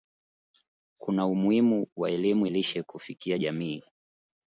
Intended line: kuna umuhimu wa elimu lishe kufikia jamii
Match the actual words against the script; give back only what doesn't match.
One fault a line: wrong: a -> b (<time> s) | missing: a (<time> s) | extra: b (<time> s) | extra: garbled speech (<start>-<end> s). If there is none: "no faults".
no faults